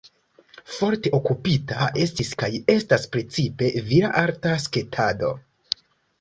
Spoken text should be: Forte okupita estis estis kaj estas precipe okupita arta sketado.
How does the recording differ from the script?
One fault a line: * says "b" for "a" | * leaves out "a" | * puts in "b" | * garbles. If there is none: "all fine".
* leaves out "estis"
* says "vira" for "okupita"